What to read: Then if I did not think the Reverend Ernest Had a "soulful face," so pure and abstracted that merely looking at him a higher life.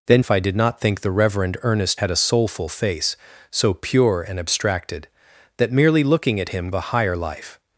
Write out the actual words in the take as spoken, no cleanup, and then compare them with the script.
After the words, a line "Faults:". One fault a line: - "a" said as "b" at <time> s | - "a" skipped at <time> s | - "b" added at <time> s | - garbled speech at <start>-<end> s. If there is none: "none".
Then if I did not think the Reverend Ernest Had a "soulful face," so pure and abstracted that merely looking at him a higher life.
Faults:
none